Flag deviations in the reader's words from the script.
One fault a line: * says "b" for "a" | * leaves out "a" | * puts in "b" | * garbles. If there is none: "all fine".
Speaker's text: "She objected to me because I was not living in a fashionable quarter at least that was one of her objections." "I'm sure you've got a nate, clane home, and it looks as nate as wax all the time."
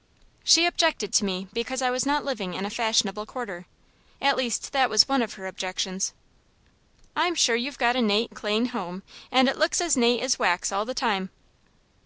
all fine